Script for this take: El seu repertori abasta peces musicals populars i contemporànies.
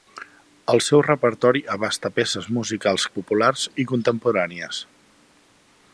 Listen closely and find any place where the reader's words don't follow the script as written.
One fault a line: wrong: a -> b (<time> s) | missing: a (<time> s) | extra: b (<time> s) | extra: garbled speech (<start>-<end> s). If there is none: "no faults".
no faults